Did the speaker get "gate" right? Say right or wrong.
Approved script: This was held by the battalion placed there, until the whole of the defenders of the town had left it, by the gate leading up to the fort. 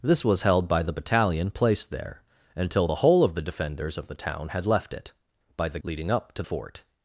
wrong